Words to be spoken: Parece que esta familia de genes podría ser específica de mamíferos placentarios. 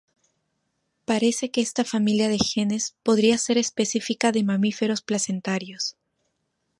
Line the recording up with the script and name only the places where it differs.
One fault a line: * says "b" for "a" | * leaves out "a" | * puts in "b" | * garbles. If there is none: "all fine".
all fine